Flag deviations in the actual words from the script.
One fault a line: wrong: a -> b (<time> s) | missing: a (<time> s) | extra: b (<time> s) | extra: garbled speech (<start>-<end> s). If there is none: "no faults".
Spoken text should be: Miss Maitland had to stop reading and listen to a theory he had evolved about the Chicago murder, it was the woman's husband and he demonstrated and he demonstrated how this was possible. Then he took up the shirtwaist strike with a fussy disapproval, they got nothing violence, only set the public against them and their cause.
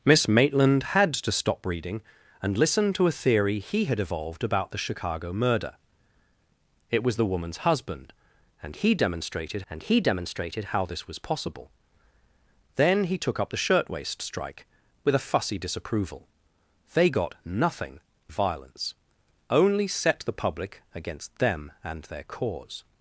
no faults